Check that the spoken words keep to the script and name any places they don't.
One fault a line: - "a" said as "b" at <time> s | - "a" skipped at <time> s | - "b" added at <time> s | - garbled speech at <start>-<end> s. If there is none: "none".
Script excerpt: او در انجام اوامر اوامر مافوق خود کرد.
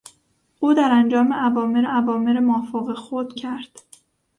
none